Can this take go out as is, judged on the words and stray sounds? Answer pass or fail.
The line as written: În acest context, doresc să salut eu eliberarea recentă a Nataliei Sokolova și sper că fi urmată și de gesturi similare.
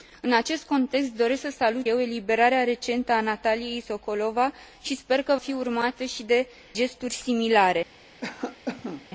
fail